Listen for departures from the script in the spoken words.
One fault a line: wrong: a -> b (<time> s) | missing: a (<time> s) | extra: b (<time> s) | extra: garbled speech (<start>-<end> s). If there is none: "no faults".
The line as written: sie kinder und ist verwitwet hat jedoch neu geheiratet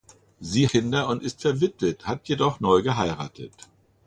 no faults